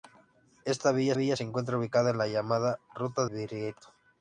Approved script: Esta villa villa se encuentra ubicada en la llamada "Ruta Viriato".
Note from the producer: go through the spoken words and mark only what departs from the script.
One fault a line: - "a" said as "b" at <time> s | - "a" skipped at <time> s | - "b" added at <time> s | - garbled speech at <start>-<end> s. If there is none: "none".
none